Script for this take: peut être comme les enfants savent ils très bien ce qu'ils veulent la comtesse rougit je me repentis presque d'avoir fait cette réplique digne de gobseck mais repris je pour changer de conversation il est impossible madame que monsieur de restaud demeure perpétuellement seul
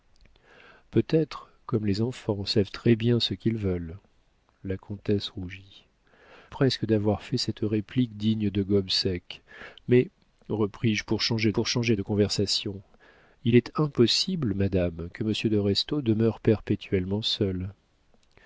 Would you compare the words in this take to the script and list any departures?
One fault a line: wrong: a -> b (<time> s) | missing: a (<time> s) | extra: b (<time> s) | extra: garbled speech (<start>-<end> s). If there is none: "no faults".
missing: ils (2.7 s)
missing: je me repentis (5.8 s)
extra: pour changer (11.5 s)